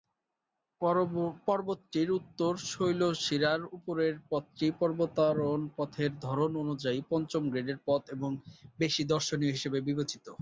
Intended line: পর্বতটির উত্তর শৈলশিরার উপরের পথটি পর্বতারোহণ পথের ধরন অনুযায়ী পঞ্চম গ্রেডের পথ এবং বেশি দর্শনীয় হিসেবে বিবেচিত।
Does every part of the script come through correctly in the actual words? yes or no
yes